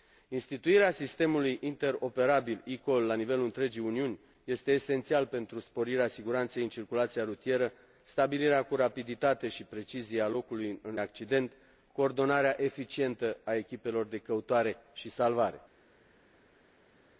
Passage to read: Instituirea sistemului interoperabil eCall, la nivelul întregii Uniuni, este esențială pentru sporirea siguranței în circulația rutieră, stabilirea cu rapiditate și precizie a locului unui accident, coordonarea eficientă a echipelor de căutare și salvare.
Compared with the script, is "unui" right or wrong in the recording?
wrong